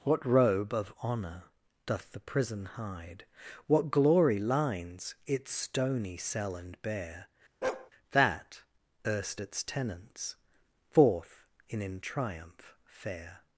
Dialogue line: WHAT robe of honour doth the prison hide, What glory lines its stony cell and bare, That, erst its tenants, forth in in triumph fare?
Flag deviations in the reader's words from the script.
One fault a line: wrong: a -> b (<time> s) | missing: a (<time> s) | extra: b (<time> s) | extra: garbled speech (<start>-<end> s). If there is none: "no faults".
no faults